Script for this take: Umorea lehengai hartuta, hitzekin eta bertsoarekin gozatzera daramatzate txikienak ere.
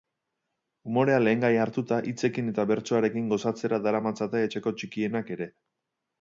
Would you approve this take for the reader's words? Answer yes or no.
no